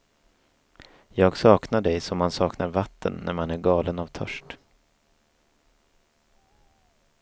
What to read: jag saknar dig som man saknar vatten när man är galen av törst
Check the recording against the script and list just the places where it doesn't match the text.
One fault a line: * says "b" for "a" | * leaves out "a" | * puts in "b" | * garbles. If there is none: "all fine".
all fine